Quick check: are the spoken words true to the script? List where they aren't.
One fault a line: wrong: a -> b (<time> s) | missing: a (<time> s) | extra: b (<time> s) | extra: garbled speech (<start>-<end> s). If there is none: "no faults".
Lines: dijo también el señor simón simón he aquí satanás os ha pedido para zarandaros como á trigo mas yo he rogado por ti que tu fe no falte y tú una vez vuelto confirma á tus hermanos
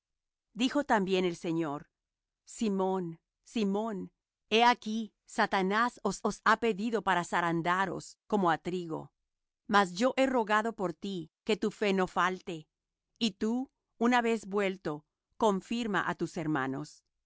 extra: os (6.2 s)